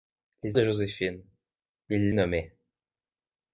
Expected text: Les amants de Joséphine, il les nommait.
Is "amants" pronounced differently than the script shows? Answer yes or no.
yes